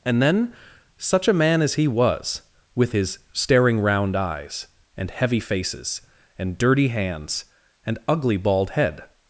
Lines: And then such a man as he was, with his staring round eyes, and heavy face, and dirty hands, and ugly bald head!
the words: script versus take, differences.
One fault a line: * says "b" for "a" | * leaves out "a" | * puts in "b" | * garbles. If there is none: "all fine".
* says "faces" for "face"